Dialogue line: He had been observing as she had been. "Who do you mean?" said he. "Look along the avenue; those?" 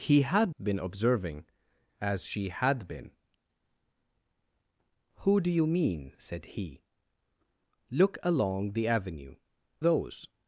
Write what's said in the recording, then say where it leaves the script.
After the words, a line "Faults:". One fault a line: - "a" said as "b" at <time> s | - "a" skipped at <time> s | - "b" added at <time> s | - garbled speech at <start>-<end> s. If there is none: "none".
He had been observing as she had been. "Who do you mean?" said he. "Look along the avenue; those?"
Faults:
none